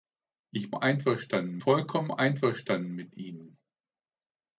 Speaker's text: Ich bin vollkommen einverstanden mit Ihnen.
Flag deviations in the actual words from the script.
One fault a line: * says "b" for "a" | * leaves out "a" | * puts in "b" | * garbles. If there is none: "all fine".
* says "einverstanden" for "bin"